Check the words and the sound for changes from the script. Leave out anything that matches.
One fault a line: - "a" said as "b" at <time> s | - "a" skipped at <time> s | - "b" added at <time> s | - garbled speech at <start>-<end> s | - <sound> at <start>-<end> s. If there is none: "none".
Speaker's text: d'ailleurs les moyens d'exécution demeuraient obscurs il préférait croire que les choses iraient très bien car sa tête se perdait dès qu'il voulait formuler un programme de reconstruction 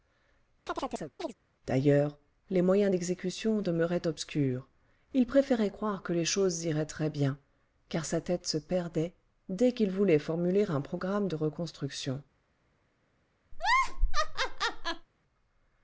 - chirp at 0.7-1.3 s
- laugh at 13.5-15.1 s